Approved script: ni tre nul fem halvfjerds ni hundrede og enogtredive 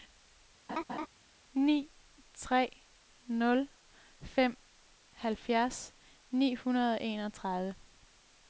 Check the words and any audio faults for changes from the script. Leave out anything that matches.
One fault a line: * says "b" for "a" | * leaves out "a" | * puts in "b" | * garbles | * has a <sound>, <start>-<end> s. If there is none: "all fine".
* has a laugh, 0.7-1.1 s